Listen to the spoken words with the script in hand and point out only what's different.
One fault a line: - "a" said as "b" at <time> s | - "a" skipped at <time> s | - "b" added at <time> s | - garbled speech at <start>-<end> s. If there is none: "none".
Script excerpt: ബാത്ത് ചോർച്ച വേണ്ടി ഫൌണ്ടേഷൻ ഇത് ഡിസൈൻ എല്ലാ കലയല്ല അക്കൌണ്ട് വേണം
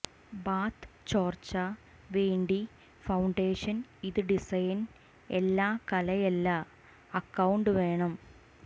none